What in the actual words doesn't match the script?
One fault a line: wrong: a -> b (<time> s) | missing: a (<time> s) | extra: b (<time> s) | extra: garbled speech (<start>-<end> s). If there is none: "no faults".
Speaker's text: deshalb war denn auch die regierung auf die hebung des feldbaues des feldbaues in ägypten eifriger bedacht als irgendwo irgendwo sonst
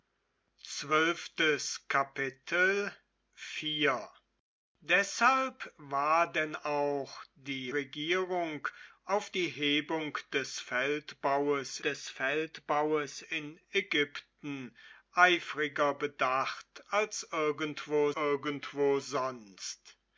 no faults